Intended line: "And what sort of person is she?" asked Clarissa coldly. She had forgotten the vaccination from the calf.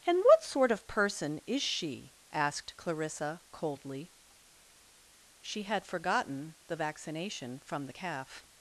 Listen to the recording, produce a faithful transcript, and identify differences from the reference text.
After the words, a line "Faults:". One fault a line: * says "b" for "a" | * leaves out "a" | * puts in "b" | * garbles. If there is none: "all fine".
"And what sort of person is she?" asked Clarissa coldly. She had forgotten the vaccination from the calf.
Faults:
all fine